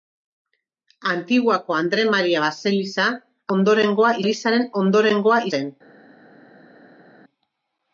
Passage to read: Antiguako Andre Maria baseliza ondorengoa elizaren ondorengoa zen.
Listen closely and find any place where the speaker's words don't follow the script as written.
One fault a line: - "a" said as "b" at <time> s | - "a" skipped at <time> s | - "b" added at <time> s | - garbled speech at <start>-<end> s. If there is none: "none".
none